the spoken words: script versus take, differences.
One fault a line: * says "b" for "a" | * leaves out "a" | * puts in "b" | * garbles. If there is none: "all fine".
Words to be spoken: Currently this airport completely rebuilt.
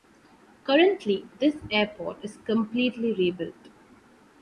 * puts in "is"